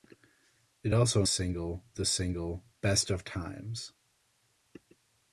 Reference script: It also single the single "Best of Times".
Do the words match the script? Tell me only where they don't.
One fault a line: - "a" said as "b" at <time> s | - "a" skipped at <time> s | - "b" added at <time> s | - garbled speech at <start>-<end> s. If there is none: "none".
none